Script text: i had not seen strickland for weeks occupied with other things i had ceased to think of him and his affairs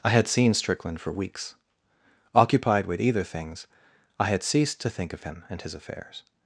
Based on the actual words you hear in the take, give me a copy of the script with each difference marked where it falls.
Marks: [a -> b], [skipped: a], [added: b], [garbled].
i had [skipped: not] seen strickland for weeks occupied with [other -> either] things i had ceased to think of him and his affairs